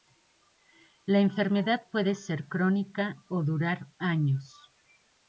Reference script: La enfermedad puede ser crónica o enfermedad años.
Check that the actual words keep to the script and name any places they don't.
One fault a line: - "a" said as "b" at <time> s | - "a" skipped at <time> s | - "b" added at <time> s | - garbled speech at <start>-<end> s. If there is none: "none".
- "enfermedad" said as "durar" at 3.4 s